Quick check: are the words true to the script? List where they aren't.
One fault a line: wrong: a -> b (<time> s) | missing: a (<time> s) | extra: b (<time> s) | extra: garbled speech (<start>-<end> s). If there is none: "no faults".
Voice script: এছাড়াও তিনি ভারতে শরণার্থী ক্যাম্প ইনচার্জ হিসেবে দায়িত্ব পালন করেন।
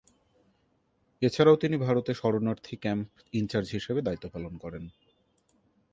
no faults